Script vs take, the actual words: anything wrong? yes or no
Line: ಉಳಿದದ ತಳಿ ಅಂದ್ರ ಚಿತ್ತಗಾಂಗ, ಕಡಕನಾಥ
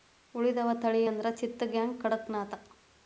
no